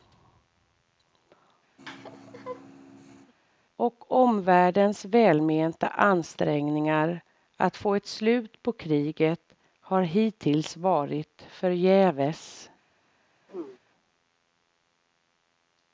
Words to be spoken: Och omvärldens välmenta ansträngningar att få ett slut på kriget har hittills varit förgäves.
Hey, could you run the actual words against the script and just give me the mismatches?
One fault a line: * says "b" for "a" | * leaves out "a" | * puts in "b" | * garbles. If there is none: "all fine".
all fine